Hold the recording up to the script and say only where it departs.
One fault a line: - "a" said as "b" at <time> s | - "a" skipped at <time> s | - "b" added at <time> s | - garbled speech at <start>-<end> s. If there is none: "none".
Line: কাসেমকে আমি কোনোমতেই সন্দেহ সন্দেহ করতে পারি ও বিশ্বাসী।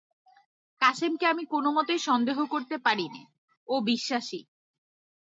- "সন্দেহ" skipped at 2.4 s
- "নে" added at 3.1 s